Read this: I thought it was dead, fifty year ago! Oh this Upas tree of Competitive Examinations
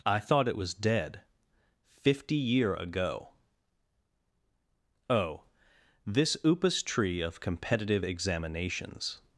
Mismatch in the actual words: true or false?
false